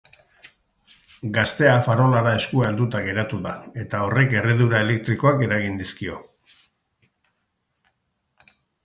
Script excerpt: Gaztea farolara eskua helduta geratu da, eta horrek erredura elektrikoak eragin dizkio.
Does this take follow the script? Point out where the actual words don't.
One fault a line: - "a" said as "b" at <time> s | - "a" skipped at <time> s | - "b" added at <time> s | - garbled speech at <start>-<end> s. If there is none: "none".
none